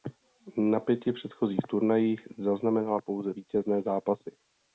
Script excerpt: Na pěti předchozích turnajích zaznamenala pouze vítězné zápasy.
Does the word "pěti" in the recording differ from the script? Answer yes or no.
no